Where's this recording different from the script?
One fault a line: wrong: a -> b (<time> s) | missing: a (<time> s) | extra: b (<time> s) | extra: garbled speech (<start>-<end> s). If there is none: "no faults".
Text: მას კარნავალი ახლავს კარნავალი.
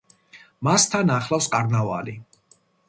wrong: კარნავალი -> თან (0.9 s)